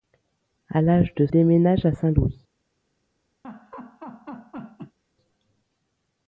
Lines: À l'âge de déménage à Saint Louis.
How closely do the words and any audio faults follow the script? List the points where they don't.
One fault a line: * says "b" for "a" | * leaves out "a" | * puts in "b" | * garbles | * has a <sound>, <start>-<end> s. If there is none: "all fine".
* has a laugh, 3.4-5.0 s